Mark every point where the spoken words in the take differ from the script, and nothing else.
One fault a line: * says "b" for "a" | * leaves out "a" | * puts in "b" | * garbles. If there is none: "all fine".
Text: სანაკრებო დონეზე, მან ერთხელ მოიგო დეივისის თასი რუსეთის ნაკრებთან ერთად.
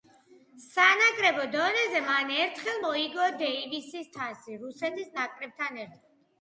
all fine